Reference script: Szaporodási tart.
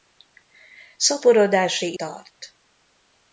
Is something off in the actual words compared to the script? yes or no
no